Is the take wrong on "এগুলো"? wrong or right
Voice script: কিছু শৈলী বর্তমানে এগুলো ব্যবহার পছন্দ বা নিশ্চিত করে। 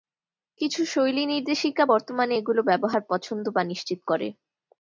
right